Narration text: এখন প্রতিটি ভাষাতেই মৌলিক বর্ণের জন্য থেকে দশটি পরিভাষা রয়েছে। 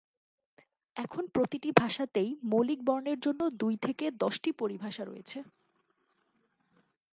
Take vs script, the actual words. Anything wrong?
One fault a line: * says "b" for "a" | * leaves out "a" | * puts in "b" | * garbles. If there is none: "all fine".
* puts in "দুই"